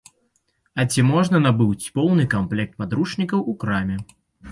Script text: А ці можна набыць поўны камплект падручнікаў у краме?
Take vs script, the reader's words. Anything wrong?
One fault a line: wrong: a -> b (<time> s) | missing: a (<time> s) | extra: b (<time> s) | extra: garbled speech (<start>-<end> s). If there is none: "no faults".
no faults